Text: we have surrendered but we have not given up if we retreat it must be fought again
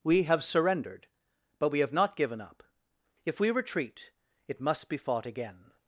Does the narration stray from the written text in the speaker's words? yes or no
no